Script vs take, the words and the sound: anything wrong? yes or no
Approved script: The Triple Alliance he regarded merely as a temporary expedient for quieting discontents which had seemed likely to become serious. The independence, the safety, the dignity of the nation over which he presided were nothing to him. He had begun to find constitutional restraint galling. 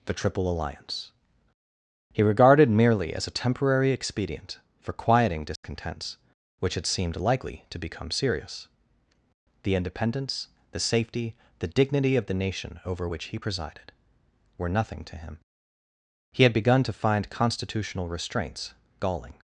yes